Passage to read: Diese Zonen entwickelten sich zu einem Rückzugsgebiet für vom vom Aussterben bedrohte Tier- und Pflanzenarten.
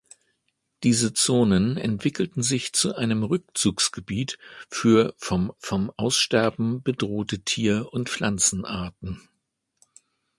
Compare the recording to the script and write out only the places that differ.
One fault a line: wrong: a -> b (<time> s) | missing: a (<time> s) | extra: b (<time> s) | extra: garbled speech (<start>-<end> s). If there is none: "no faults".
no faults